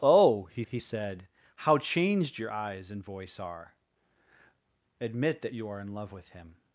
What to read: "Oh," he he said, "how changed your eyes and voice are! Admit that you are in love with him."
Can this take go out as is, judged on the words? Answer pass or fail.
pass